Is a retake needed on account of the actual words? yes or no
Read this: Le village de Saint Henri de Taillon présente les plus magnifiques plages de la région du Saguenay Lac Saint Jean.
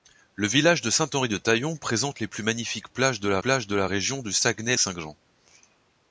yes